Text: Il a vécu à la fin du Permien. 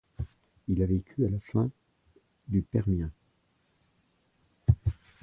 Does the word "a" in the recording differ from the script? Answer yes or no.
no